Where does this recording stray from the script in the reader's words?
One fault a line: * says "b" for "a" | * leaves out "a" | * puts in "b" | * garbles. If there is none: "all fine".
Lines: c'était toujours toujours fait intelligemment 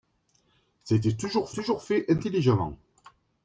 all fine